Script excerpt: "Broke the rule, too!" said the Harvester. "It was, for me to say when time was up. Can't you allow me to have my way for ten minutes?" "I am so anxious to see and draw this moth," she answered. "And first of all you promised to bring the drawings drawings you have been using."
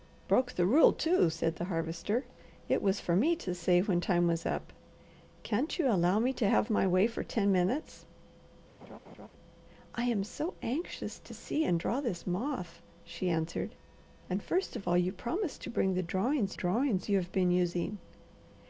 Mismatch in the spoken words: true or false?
false